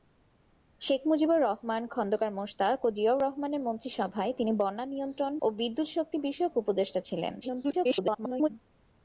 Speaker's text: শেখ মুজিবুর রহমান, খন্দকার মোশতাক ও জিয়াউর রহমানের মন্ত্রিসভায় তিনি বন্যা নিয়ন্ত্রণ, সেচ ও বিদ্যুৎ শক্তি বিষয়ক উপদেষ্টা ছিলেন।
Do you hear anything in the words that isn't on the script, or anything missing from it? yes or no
yes